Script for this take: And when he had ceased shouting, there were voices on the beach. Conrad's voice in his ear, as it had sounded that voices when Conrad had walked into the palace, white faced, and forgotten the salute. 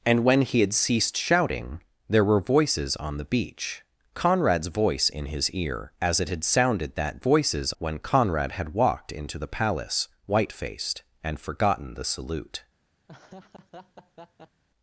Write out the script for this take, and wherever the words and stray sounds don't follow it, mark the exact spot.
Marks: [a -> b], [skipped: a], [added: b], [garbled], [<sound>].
And when he had ceased shouting, there were voices on the beach. Conrad's voice in his ear, as it had sounded that voices when Conrad had walked into the palace, white faced, and forgotten the salute. [laugh]